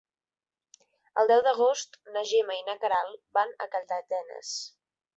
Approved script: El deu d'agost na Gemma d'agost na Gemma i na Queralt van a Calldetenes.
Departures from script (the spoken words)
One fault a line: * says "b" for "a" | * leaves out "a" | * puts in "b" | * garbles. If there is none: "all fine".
* leaves out "d'agost na Gemma"